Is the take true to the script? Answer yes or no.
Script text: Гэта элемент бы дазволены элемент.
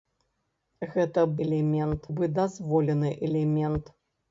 yes